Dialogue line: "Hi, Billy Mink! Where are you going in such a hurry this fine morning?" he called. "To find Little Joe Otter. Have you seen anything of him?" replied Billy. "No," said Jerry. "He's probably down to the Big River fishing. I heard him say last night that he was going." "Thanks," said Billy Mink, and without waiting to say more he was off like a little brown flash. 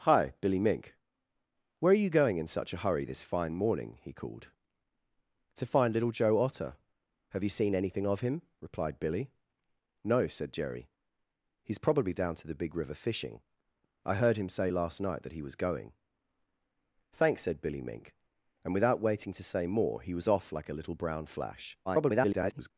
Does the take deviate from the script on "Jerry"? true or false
false